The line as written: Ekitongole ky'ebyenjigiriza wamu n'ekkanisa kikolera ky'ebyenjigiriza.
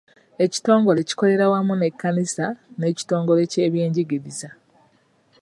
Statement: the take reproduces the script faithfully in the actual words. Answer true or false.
false